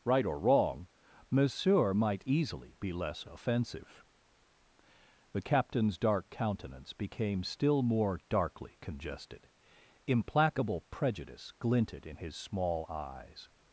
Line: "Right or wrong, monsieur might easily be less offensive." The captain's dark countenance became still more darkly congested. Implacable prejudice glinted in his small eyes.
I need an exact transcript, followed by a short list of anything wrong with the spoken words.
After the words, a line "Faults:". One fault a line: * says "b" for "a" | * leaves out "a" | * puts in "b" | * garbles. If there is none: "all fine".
"Right or wrong, monsieur might easily be less offensive." The captain's dark countenance became still more darkly congested. Implacable prejudice glinted in his small eyes.
Faults:
all fine